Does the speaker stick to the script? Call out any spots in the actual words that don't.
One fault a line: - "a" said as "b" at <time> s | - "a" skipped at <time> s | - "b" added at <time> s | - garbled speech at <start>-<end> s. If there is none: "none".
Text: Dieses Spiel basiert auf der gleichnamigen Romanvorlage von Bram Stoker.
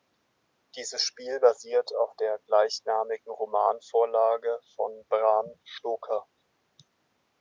none